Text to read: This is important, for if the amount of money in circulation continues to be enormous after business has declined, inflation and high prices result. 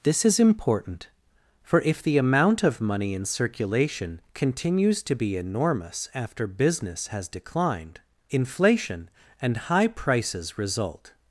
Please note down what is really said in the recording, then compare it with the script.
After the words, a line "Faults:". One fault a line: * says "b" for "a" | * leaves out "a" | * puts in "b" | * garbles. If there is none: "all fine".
This is important, for if the amount of money in circulation continues to be enormous after business has declined, inflation and high prices result.
Faults:
all fine